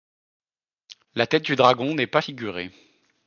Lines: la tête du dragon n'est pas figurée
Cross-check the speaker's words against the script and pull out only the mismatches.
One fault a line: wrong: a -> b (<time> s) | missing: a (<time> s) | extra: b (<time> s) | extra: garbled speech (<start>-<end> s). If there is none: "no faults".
no faults